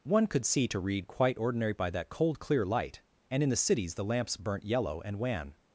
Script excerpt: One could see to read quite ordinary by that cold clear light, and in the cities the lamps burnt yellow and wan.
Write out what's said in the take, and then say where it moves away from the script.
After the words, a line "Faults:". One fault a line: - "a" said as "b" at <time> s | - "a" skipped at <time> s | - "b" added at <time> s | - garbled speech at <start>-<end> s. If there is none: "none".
One could see to read quite ordinary by that cold clear light, and in the cities the lamps burnt yellow and wan.
Faults:
none